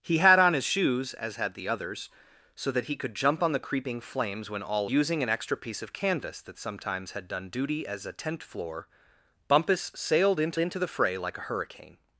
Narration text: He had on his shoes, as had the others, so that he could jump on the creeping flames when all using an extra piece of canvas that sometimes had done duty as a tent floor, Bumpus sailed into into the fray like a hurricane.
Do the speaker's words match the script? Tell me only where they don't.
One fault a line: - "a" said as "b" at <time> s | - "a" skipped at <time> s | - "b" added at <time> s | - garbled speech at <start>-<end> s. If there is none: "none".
none